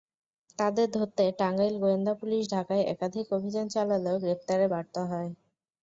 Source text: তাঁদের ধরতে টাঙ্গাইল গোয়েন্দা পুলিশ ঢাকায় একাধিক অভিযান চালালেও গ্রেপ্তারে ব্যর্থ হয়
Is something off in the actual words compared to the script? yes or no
no